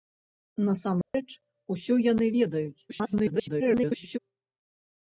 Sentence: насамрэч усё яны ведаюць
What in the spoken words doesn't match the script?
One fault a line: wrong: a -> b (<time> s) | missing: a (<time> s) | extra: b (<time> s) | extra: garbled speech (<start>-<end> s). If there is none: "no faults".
extra: garbled speech (2.9-4.2 s)